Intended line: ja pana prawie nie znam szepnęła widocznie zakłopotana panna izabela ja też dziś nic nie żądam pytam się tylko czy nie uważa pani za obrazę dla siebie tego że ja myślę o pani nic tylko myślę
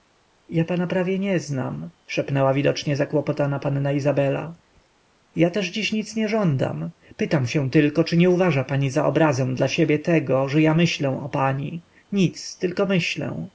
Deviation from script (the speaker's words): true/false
false